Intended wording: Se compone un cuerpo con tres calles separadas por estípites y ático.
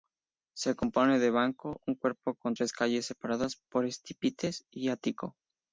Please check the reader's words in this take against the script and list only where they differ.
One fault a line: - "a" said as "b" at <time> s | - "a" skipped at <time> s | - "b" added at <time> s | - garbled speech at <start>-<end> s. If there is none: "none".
- "de banco" added at 1.2 s